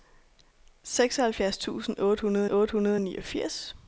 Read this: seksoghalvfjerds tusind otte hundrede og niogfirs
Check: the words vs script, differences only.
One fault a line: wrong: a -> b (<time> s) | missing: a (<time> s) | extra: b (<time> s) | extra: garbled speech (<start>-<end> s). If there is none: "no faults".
extra: otte hundrede (2.5 s)